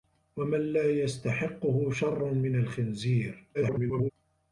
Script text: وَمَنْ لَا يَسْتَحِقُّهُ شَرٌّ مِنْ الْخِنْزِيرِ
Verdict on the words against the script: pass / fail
fail